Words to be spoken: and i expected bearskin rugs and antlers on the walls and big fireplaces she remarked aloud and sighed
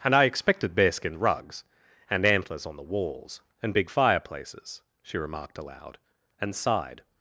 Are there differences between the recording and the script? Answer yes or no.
no